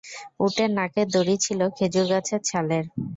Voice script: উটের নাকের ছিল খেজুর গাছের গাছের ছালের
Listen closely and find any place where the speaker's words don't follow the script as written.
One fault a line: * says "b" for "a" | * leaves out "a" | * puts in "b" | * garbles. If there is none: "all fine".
* puts in "দড়ি"
* leaves out "গাছের"